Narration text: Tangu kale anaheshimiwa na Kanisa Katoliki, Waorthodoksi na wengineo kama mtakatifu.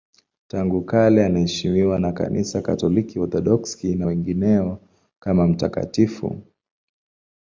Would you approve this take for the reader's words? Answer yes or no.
yes